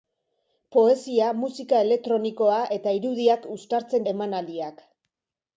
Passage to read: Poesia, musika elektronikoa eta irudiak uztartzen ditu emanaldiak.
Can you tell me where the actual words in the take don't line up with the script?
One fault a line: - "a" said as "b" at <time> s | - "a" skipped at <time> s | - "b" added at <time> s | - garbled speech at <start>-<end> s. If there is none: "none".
- "ditu" skipped at 4.1 s